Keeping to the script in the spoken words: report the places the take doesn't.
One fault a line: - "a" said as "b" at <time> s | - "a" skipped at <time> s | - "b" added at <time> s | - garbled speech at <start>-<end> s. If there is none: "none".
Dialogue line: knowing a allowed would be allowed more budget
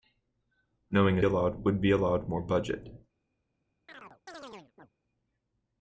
none